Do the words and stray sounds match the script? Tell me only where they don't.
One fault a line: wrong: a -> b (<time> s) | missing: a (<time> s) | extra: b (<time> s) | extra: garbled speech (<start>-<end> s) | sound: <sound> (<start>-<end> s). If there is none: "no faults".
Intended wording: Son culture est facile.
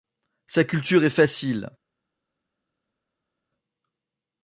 wrong: Son -> Sa (0.5 s)